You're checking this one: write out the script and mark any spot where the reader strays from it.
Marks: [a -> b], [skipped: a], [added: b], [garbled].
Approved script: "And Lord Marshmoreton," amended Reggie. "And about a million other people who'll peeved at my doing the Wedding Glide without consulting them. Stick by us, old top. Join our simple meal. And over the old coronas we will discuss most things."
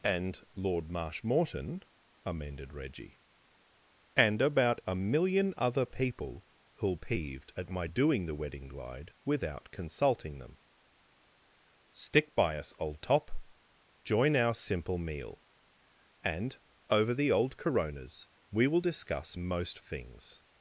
"And Lord Marshmoreton," amended Reggie. "And about a million other people who'll peeved at my doing the Wedding Glide without consulting them. Stick by us, old top. Join our simple meal. And over the old coronas we will discuss most things."